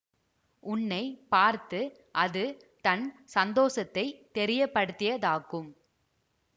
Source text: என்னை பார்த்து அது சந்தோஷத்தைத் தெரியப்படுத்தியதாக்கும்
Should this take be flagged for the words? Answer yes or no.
yes